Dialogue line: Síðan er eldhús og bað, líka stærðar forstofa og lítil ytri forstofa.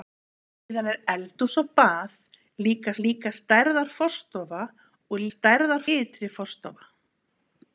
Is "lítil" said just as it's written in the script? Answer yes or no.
no